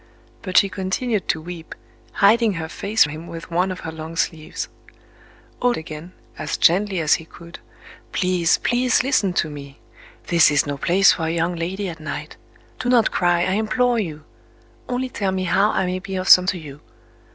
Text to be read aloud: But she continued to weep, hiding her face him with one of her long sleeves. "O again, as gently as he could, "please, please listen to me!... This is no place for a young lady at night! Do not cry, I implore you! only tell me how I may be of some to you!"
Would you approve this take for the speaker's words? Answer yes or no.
yes